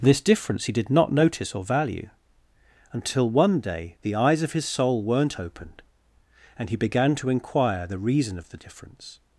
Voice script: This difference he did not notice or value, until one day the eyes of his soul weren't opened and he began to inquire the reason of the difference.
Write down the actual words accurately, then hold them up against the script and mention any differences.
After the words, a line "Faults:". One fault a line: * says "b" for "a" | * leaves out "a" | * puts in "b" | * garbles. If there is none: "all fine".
This difference he did not notice or value, until one day the eyes of his soul weren't opened and he began to inquire the reason of the difference.
Faults:
all fine